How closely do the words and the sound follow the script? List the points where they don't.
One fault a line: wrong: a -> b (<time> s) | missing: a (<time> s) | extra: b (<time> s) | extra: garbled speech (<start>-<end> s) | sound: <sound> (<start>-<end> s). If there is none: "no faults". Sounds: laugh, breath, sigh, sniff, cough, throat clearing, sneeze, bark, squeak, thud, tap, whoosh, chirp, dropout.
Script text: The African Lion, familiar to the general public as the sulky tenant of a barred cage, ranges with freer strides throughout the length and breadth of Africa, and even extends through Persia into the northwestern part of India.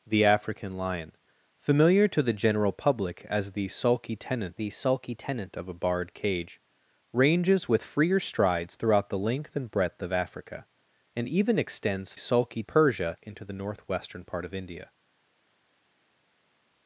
extra: the sulky tenant (4.5 s)
wrong: through -> sulky (12.1 s)